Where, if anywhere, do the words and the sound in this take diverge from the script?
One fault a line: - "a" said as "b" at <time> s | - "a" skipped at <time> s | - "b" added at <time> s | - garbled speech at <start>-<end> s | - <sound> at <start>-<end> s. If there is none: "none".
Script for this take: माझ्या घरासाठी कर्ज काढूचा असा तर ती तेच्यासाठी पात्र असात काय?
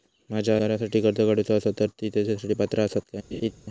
- laugh at 3.3-3.5 s